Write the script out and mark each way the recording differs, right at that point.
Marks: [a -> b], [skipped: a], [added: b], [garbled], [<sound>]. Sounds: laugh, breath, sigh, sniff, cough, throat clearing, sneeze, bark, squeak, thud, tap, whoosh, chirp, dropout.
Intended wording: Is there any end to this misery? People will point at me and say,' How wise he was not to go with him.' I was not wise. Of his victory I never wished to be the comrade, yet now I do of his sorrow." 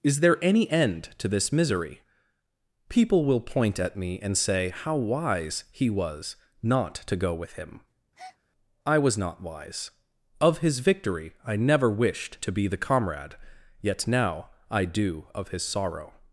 Is there any end to this misery? People will point at me and say,' How wise he was not to go with him.' [breath] I was not wise. Of his victory I never wished to be the comrade, yet now I do of his sorrow."